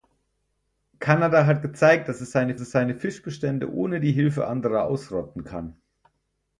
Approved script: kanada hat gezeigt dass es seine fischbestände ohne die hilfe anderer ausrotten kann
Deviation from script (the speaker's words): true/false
true